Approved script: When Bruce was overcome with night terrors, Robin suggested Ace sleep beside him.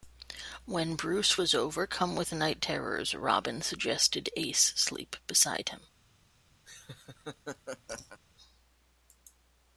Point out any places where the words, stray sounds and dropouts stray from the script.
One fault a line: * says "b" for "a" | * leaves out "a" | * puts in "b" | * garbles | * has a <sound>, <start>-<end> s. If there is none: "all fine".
* has a laugh, 6.7-8.2 s